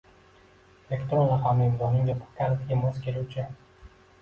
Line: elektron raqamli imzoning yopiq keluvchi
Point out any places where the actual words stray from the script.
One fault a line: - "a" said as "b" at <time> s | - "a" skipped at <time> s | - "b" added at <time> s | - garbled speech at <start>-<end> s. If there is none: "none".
- "kalitiga mos" added at 2.4 s